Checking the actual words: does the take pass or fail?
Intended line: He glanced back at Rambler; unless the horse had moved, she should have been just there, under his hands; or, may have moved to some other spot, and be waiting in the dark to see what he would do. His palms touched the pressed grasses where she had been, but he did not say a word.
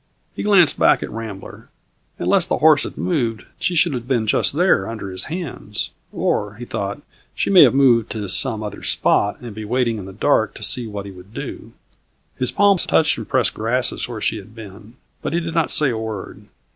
fail